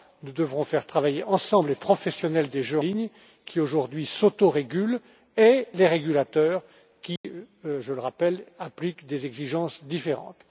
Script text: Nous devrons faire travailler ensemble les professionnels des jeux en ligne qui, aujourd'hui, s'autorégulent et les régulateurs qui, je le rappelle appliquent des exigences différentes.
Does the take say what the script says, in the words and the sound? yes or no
no